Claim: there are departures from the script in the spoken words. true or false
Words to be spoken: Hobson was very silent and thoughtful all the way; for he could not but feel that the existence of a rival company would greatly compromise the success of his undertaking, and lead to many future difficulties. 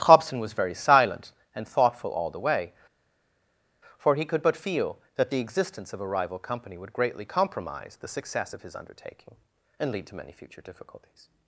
true